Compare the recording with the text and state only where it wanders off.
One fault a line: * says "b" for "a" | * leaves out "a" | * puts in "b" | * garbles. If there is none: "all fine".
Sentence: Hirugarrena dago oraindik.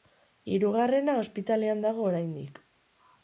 * puts in "ospitalean"